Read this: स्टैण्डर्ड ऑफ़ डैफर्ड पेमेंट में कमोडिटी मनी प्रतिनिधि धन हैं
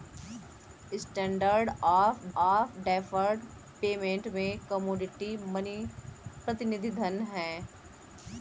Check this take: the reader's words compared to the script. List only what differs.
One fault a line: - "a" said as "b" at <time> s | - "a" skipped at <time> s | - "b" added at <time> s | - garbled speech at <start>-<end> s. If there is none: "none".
- "ऑफ़" added at 2.4 s